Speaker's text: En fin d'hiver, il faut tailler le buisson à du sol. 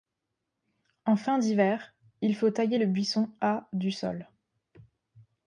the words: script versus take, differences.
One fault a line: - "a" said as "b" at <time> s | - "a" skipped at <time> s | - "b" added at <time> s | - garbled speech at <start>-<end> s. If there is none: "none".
none